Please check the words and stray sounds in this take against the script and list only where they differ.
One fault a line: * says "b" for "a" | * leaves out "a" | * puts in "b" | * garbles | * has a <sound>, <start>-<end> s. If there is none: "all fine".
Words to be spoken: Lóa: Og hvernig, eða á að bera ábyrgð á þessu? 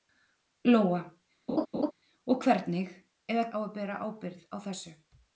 * has a laugh, 1.5-1.9 s